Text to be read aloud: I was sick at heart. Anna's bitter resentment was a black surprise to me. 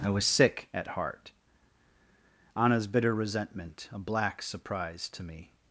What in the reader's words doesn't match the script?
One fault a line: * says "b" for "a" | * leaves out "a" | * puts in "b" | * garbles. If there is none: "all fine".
* leaves out "was"